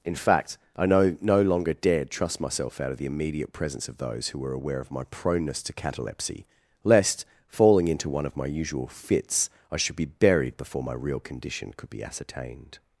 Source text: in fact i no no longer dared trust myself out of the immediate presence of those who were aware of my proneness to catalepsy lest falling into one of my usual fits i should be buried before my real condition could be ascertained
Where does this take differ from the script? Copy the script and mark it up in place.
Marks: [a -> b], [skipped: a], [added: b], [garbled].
in fact i no no longer dared trust myself out of the immediate presence of those who were aware of my proneness to catalepsy lest falling into one of my usual fits i should be buried before my real condition could be ascertained